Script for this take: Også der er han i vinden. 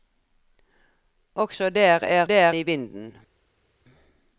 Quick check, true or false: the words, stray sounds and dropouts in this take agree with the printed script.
false